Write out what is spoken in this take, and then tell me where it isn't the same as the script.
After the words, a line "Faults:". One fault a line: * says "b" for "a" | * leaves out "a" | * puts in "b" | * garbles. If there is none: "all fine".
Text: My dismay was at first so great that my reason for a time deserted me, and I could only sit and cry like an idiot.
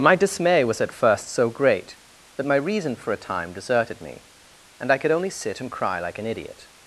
My dismay was at first so great that my reason for a time deserted me, and I could only sit and cry like an idiot.
Faults:
all fine